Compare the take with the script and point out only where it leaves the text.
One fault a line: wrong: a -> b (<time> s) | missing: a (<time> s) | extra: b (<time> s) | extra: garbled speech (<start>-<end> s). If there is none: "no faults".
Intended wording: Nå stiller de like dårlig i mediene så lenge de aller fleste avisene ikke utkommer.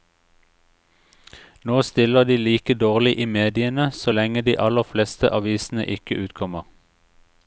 no faults